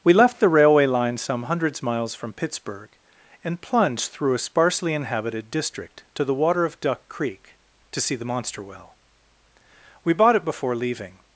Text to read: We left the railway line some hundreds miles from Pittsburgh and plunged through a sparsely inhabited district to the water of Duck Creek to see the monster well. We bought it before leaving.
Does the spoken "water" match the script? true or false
true